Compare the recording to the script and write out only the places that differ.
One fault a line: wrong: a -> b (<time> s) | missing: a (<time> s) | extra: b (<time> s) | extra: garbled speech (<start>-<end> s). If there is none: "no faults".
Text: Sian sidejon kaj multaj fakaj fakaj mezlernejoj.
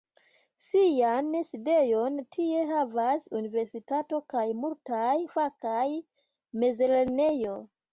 extra: tie havas Universitato (2.4 s)
missing: fakaj (5.9 s)